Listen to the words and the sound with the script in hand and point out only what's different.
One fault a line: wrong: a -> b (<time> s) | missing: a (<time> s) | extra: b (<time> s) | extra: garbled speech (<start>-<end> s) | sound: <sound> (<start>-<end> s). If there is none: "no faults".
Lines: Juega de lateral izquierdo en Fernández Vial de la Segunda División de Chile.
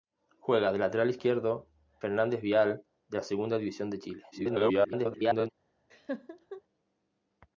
missing: en (1.7 s)
extra: garbled speech (4.3-5.5 s)
sound: laugh (5.9-6.6 s)